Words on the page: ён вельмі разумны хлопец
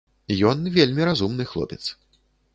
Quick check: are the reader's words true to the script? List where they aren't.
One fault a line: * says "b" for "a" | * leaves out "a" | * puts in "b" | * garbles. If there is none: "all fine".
all fine